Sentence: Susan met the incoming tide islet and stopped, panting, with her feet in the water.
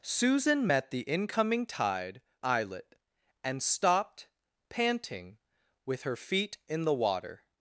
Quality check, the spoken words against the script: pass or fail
pass